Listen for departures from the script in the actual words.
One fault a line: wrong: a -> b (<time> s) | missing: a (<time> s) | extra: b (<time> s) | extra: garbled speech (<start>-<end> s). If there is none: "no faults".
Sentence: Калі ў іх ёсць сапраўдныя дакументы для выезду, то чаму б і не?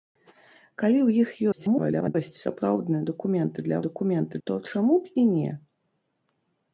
extra: garbled speech (1.5-2.2 s)
wrong: выезду -> дакументы (3.9 s)